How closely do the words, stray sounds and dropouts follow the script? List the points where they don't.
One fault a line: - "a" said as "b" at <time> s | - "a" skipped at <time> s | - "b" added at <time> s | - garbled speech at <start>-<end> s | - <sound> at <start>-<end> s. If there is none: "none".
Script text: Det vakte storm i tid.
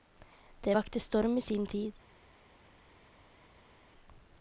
- "sin" added at 1.4 s